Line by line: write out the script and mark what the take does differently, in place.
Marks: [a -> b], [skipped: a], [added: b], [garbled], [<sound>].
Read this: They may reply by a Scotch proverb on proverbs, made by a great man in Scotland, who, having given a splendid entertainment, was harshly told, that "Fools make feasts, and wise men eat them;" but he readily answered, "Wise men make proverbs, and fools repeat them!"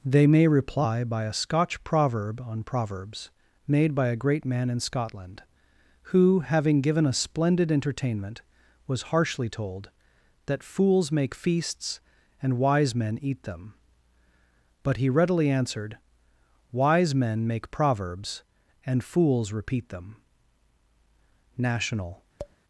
They may reply by a Scotch proverb on proverbs, made by a great man in Scotland, who, having given a splendid entertainment, was harshly told, that "Fools make feasts, and wise men eat them;" but he readily answered, "Wise men make proverbs, and fools repeat them!" [added: National] [tap]